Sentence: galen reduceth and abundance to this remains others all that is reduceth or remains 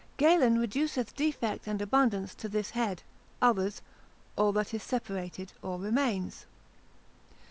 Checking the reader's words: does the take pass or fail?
fail